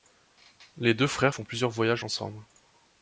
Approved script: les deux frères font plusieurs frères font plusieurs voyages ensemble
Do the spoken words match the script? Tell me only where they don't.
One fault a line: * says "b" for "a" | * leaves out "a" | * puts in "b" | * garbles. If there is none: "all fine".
* leaves out "frères font plusieurs"